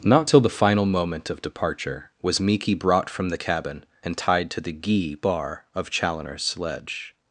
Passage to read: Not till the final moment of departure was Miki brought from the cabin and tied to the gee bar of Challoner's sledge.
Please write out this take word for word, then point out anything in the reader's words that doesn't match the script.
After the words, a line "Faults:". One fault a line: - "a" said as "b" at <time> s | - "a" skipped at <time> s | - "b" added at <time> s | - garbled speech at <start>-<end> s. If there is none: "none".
Not till the final moment of departure was Miki brought from the cabin and tied to the gee bar of Challoner's sledge.
Faults:
none